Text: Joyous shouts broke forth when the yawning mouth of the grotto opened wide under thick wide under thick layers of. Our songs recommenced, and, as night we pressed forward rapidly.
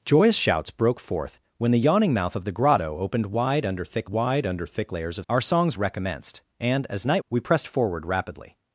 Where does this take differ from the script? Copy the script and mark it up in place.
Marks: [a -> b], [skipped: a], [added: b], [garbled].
Joyous shouts broke forth when the yawning mouth of the grotto opened wide under thick wide under thick layers of. Our songs recommenced, and, as night we pressed forward rapidly.